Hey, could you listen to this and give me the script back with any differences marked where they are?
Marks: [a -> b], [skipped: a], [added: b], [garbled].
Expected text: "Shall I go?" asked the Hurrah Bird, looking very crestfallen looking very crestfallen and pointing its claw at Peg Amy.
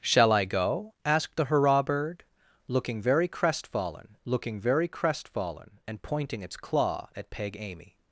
"Shall I go?" asked the Hurrah Bird, looking very crestfallen looking very crestfallen and pointing its claw at Peg Amy.